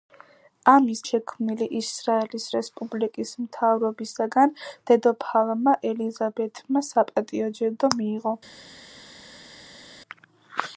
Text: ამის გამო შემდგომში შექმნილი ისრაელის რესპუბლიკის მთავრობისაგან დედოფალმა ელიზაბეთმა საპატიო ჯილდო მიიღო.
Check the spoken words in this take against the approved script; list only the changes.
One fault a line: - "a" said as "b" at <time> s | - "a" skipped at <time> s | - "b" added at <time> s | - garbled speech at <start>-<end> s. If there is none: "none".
- "გამო შემდგომში" skipped at 1.0 s